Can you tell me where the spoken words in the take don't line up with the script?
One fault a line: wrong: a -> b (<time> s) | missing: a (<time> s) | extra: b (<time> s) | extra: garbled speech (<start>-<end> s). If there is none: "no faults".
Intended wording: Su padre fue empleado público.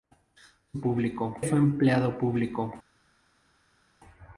wrong: padre -> público (0.8 s)